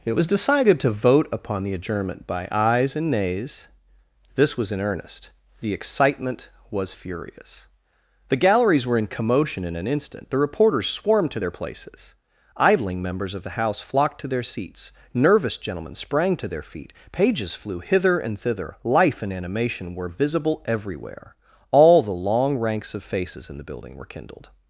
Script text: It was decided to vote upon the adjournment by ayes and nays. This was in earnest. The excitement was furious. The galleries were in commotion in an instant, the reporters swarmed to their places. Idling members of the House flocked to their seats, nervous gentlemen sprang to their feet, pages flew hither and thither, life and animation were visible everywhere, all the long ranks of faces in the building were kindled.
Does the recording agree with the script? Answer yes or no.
yes